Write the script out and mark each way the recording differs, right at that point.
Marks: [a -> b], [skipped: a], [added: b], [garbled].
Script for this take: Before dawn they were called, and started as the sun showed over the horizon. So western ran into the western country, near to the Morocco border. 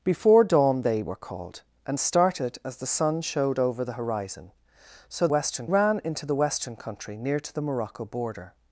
Before dawn they were called, and started as the sun showed over the horizon. So western ran into the western country, near to the Morocco border.